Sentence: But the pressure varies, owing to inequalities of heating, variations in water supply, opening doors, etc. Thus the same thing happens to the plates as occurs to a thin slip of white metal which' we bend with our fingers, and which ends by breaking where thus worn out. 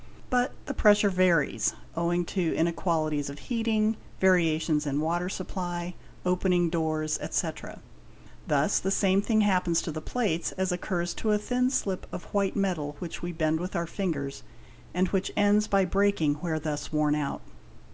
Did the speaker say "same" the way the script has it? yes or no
yes